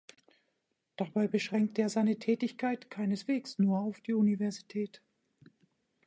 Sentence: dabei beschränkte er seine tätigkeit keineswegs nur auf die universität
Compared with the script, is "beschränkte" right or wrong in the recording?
right